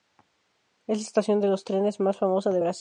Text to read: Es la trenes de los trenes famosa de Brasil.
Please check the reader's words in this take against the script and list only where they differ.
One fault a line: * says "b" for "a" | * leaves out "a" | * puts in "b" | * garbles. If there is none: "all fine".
* says "estación" for "trenes"
* puts in "más"